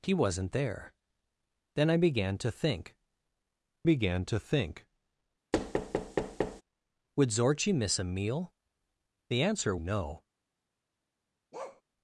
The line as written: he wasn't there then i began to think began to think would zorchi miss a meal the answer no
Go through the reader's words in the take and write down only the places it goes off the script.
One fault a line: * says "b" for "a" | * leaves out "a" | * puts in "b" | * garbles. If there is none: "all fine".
all fine